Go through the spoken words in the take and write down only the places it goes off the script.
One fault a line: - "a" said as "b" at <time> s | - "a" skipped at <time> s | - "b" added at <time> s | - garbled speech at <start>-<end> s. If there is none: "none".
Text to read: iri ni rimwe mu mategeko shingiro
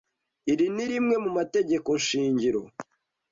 none